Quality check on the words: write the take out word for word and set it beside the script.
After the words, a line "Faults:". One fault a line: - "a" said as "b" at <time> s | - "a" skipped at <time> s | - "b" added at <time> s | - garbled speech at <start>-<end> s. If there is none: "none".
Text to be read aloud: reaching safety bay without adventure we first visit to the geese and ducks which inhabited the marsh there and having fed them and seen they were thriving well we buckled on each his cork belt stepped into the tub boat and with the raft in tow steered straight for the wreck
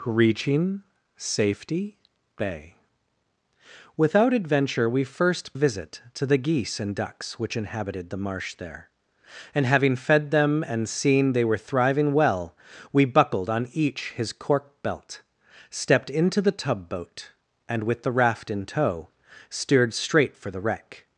reaching safety bay without adventure we first visit to the geese and ducks which inhabited the marsh there and having fed them and seen they were thriving well we buckled on each his cork belt stepped into the tub boat and with the raft in tow steered straight for the wreck
Faults:
none